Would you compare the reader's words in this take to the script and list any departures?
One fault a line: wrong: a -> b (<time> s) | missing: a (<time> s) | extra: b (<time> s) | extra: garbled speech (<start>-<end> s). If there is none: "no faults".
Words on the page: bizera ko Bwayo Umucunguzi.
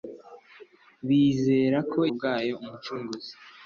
no faults